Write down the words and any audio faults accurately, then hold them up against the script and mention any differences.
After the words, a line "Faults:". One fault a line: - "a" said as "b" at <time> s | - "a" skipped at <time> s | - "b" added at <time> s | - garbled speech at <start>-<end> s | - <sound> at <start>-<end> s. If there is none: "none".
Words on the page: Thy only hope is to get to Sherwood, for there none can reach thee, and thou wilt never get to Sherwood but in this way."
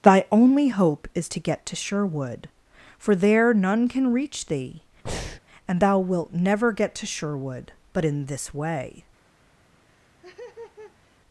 Thy only hope is to get to Sherwood, for there none can reach thee, and thou wilt never get to Sherwood but in this way."
Faults:
- breath at 5.1-5.4 s
- laugh at 9.9-11.2 s